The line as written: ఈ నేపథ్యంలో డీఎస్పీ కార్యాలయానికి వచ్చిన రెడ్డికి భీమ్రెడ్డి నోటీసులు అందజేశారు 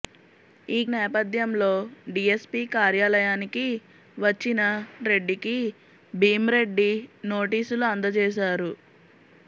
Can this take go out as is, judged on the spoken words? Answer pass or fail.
pass